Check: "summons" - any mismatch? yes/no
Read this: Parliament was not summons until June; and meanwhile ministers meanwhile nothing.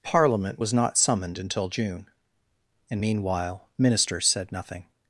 yes